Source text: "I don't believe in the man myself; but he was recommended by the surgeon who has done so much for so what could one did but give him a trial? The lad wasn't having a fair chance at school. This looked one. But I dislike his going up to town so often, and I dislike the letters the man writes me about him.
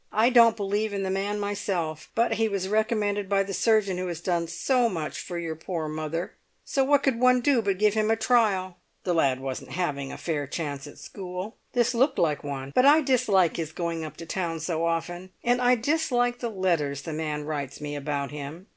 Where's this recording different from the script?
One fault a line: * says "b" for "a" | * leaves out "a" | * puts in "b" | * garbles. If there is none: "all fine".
* puts in "your poor mother"
* says "do" for "did"
* puts in "like"